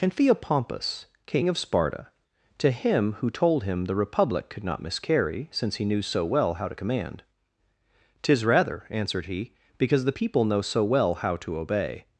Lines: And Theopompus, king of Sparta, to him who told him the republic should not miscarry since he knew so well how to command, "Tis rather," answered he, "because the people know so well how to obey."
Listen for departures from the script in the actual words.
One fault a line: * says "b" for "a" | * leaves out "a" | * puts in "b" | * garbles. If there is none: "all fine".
* says "could" for "should"